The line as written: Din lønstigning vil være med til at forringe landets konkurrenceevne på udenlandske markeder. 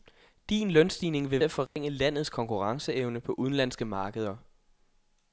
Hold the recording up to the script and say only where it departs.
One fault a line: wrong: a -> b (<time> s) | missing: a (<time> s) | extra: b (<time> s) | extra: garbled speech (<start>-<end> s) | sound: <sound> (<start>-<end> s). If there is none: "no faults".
missing: være med til (1.4 s)
sound: dropout (1.7-1.8 s)